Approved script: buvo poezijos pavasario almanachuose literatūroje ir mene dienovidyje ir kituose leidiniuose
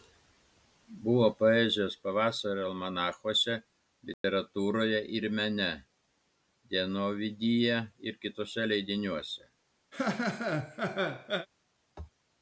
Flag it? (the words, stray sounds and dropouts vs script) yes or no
yes